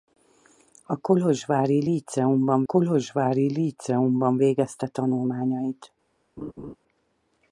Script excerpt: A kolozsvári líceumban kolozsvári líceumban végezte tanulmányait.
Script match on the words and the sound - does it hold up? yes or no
no